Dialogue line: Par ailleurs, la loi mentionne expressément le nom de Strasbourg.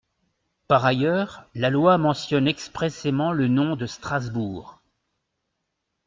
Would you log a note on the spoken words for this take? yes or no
no